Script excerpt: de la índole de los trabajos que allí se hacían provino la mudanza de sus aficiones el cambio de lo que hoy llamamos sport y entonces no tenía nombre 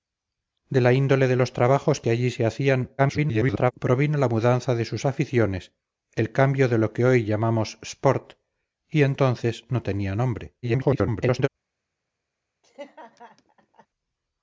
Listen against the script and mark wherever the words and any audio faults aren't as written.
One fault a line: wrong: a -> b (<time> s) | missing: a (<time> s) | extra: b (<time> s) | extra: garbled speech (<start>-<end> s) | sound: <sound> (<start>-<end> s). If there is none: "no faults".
extra: garbled speech (3.0-3.7 s)
extra: garbled speech (10.6-11.5 s)
sound: laugh (12.6-13.9 s)